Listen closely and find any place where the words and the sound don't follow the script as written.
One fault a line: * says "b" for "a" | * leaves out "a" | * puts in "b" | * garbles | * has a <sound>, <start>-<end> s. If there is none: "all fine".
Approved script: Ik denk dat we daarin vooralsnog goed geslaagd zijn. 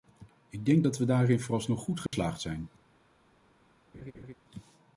* has a dropout, 2.1-2.1 s
* has a laugh, 3.9-4.3 s